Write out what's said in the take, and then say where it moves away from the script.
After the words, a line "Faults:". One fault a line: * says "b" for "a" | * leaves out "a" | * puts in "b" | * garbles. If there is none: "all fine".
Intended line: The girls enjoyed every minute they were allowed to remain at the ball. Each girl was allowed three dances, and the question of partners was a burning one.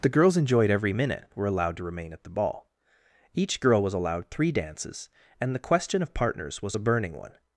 The girls enjoyed every minute were allowed to remain at the ball. Each girl was allowed three dances, and the question of partners was a burning one.
Faults:
* leaves out "they"